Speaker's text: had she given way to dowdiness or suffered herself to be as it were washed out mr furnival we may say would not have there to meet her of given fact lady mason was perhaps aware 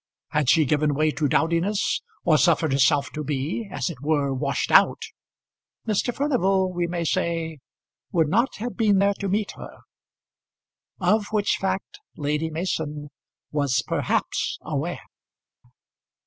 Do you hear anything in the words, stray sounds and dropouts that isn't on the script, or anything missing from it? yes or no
yes